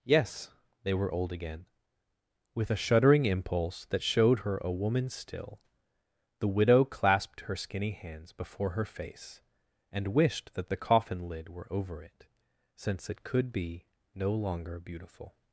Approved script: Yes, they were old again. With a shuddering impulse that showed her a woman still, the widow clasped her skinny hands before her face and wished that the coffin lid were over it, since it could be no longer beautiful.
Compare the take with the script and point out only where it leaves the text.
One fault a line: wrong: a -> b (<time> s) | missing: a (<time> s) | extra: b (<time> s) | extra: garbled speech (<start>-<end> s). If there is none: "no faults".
no faults